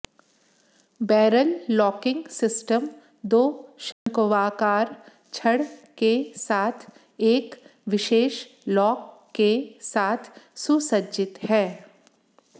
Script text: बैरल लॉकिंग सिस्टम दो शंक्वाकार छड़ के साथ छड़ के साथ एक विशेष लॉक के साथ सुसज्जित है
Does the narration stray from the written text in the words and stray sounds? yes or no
yes